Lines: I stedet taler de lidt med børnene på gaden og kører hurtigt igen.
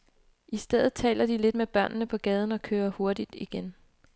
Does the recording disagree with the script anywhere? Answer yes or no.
no